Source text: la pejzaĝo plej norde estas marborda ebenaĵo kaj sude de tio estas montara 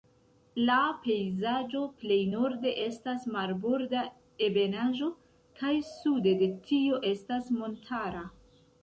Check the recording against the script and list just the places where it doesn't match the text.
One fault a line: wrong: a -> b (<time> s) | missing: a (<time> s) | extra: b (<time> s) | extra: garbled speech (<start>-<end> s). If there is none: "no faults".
no faults